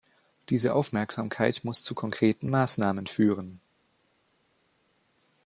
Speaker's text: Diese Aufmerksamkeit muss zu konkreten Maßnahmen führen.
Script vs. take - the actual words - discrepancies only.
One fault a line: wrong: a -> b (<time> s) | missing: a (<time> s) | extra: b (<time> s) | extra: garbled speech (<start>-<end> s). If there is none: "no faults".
no faults